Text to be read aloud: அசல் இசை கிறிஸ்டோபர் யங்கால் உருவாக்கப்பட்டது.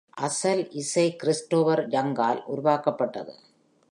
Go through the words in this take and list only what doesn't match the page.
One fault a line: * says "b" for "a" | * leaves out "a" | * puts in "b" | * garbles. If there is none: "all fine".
all fine